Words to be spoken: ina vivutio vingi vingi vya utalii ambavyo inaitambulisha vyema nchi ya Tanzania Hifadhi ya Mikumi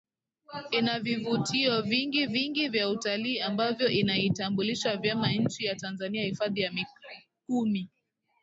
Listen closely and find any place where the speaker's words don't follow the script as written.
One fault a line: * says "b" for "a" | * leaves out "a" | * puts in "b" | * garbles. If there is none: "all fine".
all fine